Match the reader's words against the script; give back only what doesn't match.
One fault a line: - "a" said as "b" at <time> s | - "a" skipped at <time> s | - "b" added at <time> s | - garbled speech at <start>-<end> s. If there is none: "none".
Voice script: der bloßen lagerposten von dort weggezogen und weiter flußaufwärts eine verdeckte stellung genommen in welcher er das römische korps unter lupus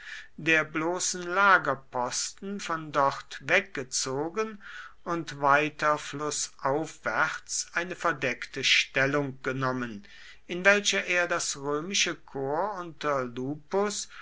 none